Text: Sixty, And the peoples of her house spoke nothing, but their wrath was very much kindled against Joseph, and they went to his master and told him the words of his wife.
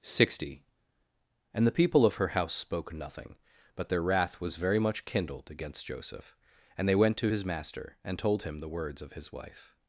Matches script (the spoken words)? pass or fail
fail